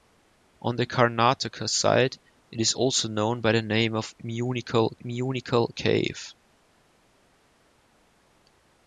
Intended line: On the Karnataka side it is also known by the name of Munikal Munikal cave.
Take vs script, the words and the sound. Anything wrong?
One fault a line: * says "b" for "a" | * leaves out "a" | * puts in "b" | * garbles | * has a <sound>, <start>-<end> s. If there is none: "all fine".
all fine